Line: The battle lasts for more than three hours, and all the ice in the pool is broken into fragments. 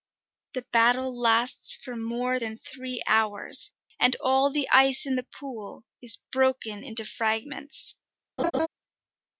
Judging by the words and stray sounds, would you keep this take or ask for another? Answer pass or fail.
fail